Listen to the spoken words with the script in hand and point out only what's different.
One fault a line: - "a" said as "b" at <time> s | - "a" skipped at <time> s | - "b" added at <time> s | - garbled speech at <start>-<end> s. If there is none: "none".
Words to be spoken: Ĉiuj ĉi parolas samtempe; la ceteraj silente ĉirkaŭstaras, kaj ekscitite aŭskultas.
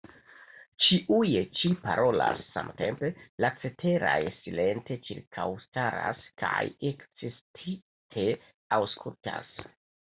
none